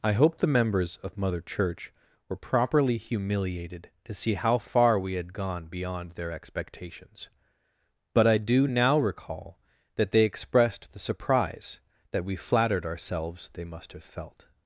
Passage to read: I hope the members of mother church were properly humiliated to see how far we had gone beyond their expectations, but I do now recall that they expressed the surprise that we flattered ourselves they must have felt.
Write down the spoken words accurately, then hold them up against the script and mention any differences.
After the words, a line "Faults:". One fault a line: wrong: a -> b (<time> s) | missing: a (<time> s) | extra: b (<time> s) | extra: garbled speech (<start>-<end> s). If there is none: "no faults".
I hope the members of mother church were properly humiliated to see how far we had gone beyond their expectations, but I do now recall that they expressed the surprise that we flattered ourselves they must have felt.
Faults:
no faults